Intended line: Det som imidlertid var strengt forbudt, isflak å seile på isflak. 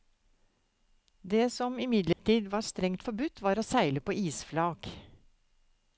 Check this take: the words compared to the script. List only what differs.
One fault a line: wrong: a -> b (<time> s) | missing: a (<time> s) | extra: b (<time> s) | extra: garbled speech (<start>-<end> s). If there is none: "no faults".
wrong: isflak -> var (3.4 s)